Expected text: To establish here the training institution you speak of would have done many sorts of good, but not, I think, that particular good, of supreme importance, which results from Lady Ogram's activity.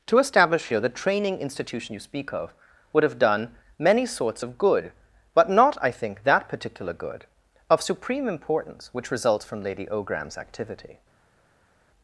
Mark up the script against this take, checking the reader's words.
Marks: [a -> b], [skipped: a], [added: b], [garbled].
To establish here the training institution you speak of would have done many sorts of good, but not, I think, that particular good, of supreme importance, which results from Lady Ogram's activity.